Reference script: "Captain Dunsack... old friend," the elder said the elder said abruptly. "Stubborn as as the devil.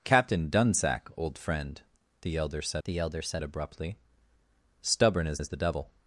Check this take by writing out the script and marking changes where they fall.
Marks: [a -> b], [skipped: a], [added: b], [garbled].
"Captain Dunsack... old friend," the elder said the elder said abruptly. "Stubborn as as the devil.